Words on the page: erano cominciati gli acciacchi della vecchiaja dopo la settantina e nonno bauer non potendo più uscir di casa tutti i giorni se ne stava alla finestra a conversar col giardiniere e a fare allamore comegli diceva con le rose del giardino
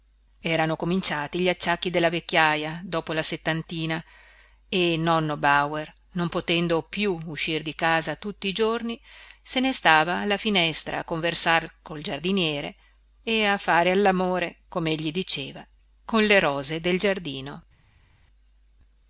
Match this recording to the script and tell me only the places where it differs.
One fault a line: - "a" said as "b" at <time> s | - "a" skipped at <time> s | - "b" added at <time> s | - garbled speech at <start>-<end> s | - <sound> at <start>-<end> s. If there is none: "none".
none